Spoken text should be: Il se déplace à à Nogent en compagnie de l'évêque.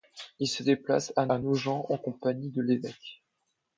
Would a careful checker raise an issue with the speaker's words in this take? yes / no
no